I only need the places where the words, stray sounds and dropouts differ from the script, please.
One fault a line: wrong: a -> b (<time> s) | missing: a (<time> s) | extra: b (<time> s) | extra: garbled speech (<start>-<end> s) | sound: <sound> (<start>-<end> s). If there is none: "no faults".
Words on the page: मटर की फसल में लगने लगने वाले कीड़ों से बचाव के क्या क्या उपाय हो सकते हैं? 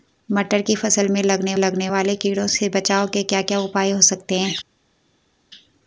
no faults